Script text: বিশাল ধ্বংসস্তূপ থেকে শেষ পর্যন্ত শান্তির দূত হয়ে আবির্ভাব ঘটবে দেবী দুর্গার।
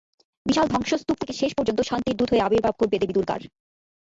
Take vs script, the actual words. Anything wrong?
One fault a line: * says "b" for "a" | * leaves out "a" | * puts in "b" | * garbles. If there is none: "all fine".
all fine